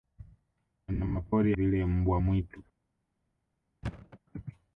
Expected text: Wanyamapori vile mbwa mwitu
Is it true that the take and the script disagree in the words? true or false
false